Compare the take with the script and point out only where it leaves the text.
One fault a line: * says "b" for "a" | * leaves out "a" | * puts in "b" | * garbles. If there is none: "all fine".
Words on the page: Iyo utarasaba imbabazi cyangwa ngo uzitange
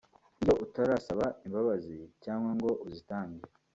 all fine